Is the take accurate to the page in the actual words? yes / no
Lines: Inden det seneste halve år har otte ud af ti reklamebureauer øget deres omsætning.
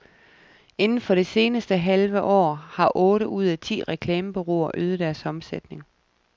no